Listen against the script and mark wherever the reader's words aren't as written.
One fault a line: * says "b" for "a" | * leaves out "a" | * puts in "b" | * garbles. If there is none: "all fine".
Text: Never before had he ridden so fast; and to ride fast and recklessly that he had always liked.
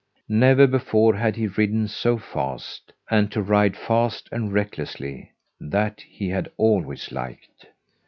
all fine